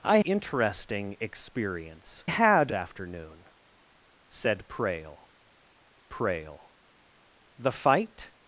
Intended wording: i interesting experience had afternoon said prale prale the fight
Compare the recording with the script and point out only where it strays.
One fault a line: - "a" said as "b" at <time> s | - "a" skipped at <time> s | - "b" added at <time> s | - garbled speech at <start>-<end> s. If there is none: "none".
none